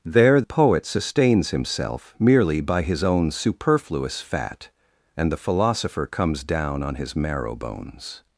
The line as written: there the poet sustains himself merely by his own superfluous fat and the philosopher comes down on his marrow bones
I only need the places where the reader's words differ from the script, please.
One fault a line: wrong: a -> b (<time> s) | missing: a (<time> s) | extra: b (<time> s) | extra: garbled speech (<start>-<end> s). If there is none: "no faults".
missing: the (0.4 s)